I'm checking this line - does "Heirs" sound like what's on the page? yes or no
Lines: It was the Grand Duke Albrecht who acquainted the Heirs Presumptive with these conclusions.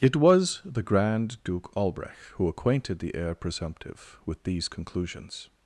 no